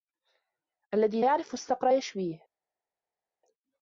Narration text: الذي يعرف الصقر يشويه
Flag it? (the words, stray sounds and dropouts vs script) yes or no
no